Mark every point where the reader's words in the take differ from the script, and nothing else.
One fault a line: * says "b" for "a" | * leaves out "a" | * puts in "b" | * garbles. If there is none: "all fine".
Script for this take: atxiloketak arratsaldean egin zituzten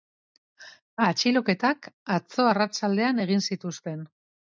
* puts in "atzo"